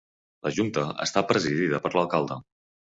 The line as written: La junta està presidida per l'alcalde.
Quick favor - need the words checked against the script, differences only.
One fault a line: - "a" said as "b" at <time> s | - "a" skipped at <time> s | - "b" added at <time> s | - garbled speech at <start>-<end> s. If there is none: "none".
none